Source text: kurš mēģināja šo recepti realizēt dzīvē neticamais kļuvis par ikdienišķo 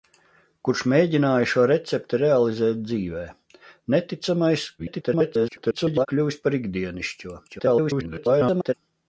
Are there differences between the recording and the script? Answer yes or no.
yes